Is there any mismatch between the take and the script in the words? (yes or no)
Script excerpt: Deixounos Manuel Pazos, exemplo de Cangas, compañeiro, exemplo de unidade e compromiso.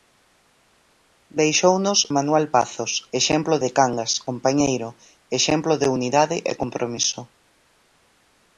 no